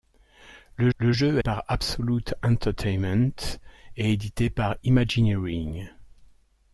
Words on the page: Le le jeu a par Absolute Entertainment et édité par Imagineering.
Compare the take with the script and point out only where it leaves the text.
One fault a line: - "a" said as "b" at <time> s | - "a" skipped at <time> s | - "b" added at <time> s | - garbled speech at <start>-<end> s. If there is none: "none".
none